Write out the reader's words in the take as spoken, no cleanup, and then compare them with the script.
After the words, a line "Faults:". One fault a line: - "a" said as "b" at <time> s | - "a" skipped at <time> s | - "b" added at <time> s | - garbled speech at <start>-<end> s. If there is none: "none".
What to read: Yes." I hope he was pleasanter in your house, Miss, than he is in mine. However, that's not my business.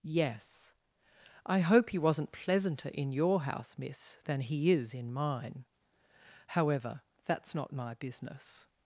Yes." I hope he wasn't pleasanter in your house, Miss, than he is in mine. However, that's not my business.
Faults:
- "was" said as "wasn't" at 2.0 s